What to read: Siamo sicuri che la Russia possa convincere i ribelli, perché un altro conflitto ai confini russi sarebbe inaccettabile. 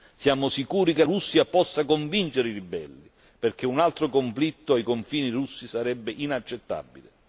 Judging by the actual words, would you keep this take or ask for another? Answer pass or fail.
fail